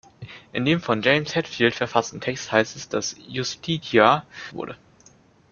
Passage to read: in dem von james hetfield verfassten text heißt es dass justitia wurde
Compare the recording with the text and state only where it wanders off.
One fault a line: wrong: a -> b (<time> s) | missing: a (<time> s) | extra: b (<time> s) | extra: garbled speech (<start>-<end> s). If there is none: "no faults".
no faults